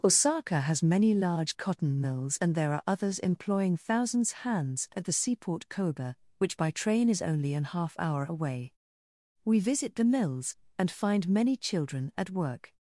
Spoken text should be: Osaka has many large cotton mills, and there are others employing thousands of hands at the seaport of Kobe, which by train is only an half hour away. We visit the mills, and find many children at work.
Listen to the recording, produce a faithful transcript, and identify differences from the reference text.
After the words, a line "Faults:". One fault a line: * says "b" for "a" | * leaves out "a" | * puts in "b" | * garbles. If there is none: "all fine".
Osaka has many large cotton mills, and there are others employing thousands hands at the seaport Kobe, which by train is only an half hour away. We visit the mills, and find many children at work.
Faults:
* leaves out "of"
* leaves out "of"